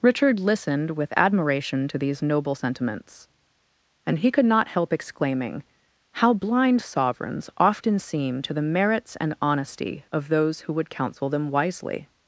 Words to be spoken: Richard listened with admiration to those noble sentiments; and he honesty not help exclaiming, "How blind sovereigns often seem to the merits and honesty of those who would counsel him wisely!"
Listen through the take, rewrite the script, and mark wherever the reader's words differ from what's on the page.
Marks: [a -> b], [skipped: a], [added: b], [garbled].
Richard listened with admiration to [those -> these] noble sentiments; and he [honesty -> could] not help exclaiming, "How blind sovereigns often seem to the merits and honesty of those who would counsel [him -> them] wisely!"